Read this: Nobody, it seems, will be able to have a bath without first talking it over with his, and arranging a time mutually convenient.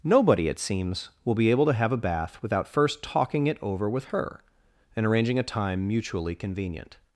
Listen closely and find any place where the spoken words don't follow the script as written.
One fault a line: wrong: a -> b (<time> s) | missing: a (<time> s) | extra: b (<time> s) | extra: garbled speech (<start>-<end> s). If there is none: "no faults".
wrong: his -> her (4.0 s)